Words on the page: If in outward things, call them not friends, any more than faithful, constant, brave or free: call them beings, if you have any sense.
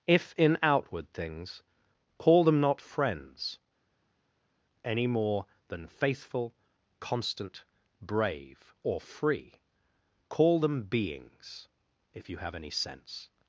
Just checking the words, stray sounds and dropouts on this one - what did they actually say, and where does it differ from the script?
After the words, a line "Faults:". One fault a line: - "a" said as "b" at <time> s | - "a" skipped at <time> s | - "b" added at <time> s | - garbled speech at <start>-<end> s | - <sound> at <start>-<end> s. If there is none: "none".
If in outward things, call them not friends, any more than faithful, constant, brave or free: call them beings, if you have any sense.
Faults:
none